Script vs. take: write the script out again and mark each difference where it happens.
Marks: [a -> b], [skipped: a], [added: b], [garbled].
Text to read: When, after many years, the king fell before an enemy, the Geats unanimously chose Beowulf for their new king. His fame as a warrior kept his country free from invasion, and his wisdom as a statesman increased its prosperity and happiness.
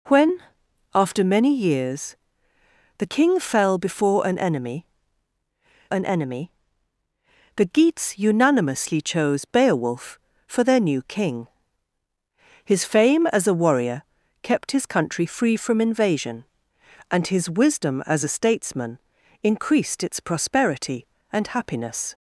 When, after many years, the king fell before an enemy, [added: an enemy] the Geats unanimously chose Beowulf for their new king. His fame as a warrior kept his country free from invasion, and his wisdom as a statesman increased its prosperity and happiness.